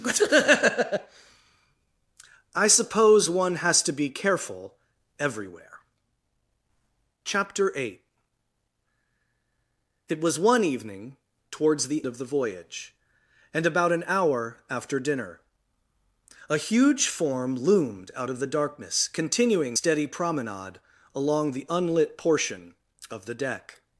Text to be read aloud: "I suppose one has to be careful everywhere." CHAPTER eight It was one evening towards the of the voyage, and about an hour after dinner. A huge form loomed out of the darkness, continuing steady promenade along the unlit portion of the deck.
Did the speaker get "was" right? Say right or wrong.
right